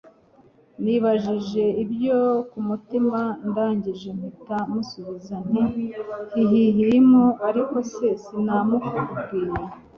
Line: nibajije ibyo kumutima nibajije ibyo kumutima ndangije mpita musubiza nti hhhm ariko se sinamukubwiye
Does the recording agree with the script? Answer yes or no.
no